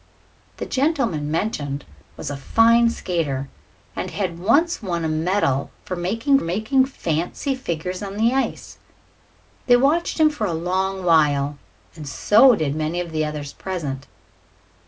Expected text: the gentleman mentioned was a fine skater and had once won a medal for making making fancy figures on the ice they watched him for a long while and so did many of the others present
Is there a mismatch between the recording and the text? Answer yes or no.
no